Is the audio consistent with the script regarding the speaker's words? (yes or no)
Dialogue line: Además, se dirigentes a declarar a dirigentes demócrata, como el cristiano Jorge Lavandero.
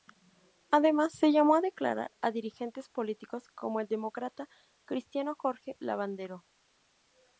no